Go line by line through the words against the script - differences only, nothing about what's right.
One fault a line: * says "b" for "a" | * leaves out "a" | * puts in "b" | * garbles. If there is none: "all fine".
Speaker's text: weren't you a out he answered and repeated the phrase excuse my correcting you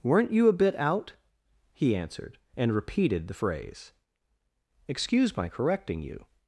* puts in "bit"